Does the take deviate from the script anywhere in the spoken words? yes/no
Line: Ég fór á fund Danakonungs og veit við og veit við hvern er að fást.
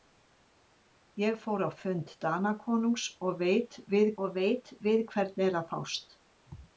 no